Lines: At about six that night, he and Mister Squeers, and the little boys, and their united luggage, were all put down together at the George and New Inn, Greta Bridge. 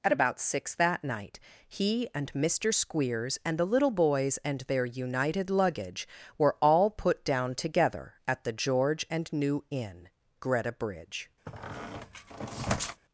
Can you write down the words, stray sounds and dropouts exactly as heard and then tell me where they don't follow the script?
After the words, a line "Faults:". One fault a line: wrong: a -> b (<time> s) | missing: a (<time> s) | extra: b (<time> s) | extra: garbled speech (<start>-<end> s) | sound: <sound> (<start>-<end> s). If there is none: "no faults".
At about six that night, he and Mister Squeers, and the little boys, and their united luggage, were all put down together at the George and New Inn, Greta Bridge.
Faults:
sound: squeak (11.5-13.0 s)